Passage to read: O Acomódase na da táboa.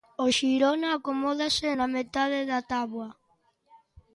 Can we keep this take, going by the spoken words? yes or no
no